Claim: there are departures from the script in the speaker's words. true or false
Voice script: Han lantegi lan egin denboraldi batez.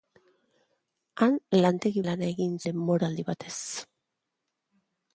false